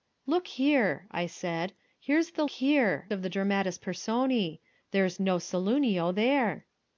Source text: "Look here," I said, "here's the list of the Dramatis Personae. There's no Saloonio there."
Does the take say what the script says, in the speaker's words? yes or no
no